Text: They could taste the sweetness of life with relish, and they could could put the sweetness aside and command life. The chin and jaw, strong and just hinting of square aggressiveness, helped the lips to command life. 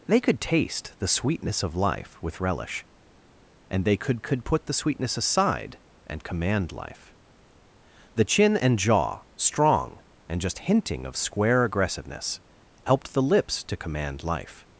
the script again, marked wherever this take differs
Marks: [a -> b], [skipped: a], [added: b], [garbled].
They could taste the sweetness of life with relish, and they could could put the sweetness aside and command life. The chin and jaw, strong and just hinting of square aggressiveness, helped the lips to command life.